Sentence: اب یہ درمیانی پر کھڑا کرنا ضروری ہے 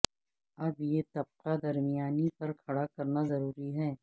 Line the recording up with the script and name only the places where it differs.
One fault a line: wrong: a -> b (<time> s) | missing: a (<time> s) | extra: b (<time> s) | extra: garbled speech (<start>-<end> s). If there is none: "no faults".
extra: طبقہ (1.1 s)